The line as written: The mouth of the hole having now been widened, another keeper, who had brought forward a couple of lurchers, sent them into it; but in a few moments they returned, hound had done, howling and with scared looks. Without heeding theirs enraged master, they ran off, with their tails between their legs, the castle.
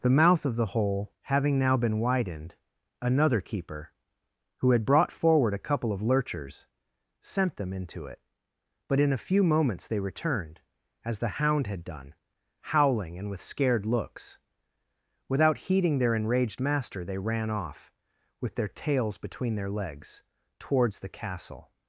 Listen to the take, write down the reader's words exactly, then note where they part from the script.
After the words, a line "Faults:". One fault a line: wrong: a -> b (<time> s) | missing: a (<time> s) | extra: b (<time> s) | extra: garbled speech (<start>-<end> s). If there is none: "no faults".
The mouth of the hole having now been widened, another keeper, who had brought forward a couple of lurchers, sent them into it; but in a few moments they returned, as the hound had done, howling and with scared looks. Without heeding their enraged master, they ran off, with their tails between their legs, towards the castle.
Faults:
extra: as the (11.1 s)
wrong: theirs -> their (16.0 s)
extra: towards (20.6 s)